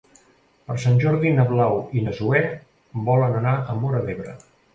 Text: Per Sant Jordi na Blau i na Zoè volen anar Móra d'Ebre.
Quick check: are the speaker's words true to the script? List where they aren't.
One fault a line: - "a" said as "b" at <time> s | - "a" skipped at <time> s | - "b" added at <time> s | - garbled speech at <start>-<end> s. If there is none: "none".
- "a" added at 3.6 s